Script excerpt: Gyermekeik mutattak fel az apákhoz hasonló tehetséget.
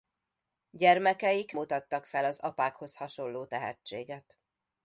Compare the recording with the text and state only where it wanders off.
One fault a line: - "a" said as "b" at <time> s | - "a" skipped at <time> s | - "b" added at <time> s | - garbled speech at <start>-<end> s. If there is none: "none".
none